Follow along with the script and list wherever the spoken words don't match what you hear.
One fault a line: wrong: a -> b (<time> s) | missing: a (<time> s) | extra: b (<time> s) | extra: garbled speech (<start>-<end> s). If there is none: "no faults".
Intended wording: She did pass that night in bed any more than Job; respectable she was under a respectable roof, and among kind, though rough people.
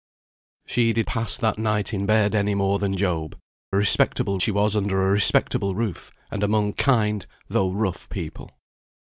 no faults